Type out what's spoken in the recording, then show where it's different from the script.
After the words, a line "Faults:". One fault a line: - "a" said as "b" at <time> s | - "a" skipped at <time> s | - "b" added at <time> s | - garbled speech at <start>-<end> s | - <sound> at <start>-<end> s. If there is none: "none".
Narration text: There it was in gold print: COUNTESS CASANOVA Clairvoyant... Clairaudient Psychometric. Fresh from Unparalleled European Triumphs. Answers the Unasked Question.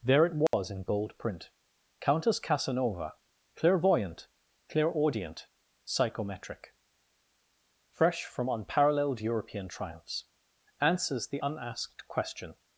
There it was in gold print: COUNTESS CASANOVA Clairvoyant... Clairaudient Psychometric. Fresh from Unparalleled European Triumphs. Answers the Unasked Question.
Faults:
- dropout at 0.5-0.5 s